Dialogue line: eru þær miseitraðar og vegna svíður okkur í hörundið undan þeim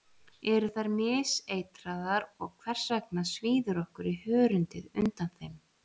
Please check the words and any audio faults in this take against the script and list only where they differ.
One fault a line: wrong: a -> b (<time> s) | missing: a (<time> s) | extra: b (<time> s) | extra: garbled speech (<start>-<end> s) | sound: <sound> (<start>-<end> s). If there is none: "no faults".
extra: hvers (2.6 s)